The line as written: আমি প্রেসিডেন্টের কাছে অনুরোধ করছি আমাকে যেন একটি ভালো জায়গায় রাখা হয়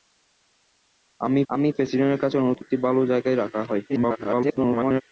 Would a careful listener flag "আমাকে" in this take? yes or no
yes